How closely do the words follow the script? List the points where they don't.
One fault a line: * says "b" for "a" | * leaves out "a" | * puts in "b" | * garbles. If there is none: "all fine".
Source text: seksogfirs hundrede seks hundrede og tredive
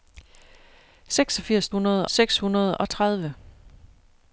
all fine